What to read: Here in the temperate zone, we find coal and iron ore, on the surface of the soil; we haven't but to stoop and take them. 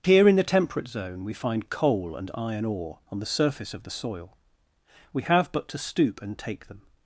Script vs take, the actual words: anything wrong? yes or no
yes